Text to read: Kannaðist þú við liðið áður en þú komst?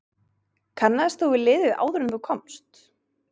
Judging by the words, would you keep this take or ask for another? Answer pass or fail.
pass